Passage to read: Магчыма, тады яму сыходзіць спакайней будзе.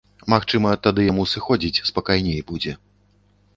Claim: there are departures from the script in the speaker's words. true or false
false